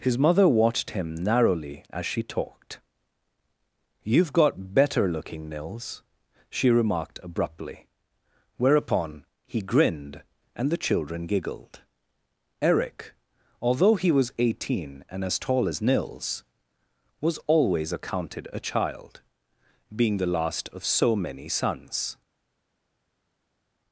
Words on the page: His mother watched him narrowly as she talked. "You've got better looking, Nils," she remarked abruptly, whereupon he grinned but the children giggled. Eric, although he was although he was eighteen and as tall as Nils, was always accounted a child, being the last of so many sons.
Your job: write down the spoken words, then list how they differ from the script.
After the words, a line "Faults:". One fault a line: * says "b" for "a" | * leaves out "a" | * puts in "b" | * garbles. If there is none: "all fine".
His mother watched him narrowly as she talked. "You've got better looking, Nils," she remarked abruptly, whereupon he grinned and the children giggled. Eric, although he was eighteen and as tall as Nils, was always accounted a child, being the last of so many sons.
Faults:
* says "and" for "but"
* leaves out "although he was"